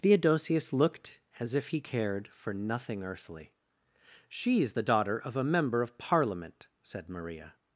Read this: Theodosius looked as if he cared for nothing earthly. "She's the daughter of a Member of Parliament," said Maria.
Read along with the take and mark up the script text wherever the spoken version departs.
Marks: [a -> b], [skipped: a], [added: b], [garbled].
Theodosius looked as if he cared for nothing earthly. "She's the daughter of a Member of Parliament," said Maria.